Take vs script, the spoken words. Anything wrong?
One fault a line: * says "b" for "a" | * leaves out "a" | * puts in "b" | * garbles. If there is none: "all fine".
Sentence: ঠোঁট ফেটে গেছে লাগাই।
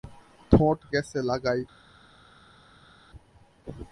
* leaves out "ফেটে"